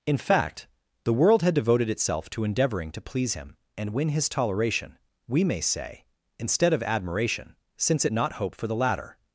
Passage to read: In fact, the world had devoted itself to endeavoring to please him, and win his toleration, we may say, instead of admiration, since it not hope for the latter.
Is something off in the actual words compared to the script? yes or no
no